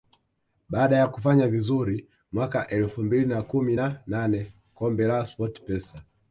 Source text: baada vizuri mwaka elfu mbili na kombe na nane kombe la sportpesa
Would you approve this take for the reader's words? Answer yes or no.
no